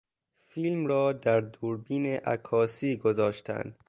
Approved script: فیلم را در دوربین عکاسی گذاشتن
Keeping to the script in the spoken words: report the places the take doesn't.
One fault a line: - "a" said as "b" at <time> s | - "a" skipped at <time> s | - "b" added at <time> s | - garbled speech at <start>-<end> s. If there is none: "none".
none